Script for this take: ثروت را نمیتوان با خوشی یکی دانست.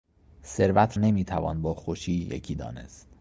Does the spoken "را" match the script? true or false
false